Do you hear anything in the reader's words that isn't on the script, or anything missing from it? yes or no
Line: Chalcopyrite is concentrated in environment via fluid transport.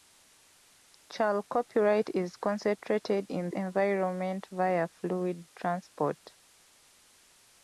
no